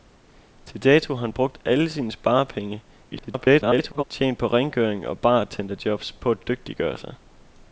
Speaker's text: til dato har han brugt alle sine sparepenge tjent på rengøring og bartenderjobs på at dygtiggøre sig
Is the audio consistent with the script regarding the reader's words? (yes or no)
no